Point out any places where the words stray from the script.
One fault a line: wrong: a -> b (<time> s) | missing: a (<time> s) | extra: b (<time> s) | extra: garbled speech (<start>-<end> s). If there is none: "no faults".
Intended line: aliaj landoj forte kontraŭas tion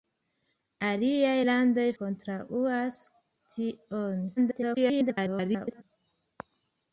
missing: forte (1.9 s)
extra: garbled speech (4.4-5.8 s)